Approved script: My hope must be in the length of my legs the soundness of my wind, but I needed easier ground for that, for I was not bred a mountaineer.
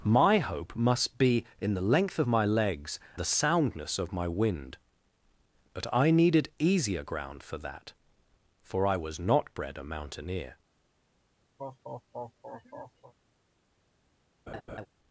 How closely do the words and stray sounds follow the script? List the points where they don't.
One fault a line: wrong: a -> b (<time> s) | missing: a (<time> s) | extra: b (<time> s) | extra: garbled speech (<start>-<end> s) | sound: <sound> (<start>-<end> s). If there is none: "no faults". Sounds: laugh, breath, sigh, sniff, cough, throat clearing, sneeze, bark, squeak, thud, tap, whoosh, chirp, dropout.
sound: laugh (11.6-13.1 s)
sound: laugh (14.5-14.9 s)